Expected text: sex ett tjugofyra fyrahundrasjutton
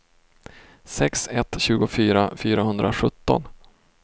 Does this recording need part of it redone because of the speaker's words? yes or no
no